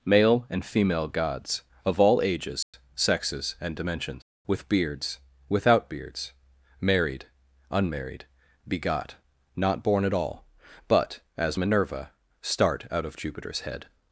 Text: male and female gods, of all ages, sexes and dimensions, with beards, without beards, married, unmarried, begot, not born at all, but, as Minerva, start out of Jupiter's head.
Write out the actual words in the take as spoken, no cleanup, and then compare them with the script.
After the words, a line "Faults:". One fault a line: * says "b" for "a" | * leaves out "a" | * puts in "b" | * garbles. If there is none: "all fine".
male and female gods, of all ages, sexes and dimensions, with beards, without beards, married, unmarried, begot, not born at all, but, as Minerva, start out of Jupiter's head.
Faults:
all fine